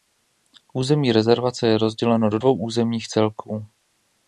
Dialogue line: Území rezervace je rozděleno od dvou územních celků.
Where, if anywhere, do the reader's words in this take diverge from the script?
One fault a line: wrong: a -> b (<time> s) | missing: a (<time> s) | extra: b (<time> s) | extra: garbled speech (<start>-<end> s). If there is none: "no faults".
wrong: od -> do (2.3 s)